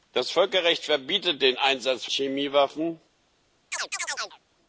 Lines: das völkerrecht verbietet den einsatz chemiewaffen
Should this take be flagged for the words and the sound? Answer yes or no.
yes